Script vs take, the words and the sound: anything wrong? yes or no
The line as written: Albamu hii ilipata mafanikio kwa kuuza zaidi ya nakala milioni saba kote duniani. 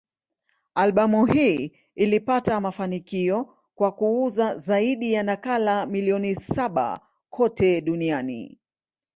no